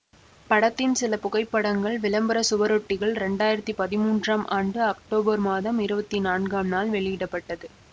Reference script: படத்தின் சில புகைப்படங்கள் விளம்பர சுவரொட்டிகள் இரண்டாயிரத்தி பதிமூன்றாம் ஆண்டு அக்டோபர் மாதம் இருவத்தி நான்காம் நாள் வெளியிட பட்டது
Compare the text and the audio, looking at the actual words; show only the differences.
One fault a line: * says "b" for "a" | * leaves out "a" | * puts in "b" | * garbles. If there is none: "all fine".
all fine